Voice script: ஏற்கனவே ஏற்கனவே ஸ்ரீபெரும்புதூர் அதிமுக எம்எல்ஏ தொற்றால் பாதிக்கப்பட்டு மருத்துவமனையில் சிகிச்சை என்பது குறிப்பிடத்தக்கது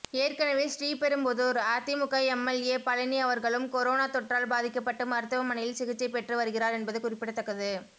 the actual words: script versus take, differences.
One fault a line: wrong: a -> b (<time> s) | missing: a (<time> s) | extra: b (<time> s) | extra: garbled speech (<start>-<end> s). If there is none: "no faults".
missing: ஏற்கனவே (0.6 s)
extra: பழனி அவர்களும் கொரோனா (2.9 s)
extra: பெற்று வருகிறார் (6.1 s)